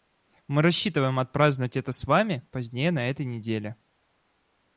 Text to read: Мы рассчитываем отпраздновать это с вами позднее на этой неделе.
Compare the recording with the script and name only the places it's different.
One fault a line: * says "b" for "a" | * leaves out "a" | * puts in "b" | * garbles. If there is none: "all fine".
all fine